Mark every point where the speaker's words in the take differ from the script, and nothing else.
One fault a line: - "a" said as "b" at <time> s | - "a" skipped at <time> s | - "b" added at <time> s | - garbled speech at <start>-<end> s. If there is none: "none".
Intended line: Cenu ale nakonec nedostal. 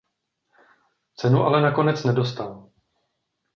none